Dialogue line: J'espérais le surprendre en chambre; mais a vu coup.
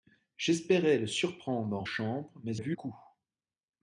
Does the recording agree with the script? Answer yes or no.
yes